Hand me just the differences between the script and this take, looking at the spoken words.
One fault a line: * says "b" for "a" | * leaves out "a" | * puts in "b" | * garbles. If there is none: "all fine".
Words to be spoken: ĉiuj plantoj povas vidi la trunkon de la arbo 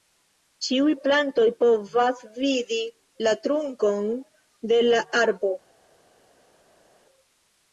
all fine